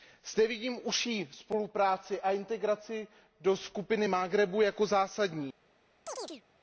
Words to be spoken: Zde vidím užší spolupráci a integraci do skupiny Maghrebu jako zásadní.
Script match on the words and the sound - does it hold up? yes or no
no